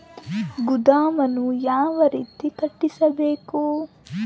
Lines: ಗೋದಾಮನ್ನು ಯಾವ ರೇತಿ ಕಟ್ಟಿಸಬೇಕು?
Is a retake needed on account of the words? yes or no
no